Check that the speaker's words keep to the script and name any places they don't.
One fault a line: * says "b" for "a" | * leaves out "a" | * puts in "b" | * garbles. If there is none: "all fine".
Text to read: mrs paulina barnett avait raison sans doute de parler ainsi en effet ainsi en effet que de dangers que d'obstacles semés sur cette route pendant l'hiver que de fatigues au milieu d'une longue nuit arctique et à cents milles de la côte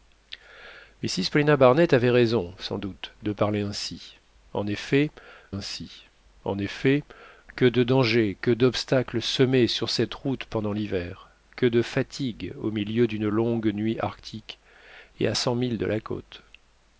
all fine